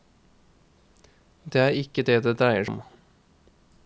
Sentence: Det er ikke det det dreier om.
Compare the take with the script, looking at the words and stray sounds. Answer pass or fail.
pass